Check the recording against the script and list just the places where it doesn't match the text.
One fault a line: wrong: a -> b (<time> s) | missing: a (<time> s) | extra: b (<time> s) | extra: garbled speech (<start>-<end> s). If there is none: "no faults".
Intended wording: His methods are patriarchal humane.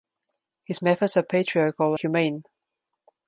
no faults